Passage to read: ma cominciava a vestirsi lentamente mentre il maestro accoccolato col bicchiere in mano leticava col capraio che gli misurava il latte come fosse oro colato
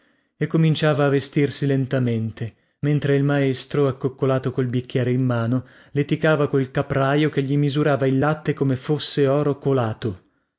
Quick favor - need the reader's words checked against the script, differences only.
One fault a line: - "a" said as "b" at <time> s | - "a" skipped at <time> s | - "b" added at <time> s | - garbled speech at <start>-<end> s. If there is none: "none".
- "ma" said as "e" at 0.3 s